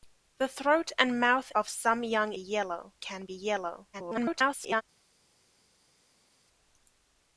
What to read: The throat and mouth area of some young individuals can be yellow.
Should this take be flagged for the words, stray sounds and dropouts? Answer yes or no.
yes